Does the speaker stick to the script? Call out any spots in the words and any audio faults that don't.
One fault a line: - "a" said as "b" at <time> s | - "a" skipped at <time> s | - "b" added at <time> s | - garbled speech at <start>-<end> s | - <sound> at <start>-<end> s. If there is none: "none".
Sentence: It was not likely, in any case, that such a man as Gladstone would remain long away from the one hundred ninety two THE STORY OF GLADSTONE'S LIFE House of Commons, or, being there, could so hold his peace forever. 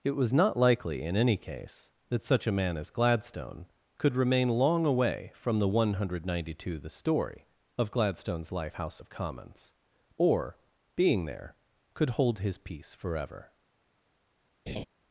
- "would" said as "could" at 4.0 s
- "so" skipped at 12.1 s
- laugh at 14.7-14.8 s